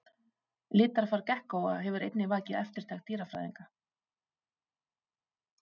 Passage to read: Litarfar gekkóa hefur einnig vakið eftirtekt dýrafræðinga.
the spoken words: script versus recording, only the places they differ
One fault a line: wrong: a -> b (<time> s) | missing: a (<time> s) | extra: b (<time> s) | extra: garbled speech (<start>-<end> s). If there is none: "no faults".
no faults